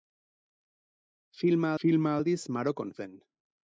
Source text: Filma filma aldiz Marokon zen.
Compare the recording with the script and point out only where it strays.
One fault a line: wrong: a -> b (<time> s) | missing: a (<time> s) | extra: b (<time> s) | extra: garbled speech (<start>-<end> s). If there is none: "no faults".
no faults